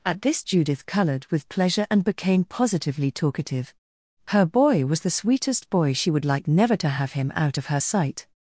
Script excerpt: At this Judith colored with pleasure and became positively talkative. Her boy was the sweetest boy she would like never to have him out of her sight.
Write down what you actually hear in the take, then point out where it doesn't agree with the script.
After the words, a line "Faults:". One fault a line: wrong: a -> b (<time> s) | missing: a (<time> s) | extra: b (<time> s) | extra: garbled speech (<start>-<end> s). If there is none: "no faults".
At this Judith colored with pleasure and became positively talkative. Her boy was the sweetest boy she would like never to have him out of her sight.
Faults:
no faults